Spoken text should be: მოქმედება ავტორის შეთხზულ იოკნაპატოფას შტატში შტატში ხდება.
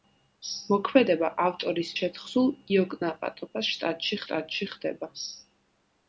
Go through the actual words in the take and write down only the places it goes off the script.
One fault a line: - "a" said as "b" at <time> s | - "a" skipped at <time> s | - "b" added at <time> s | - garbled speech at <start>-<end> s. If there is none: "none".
none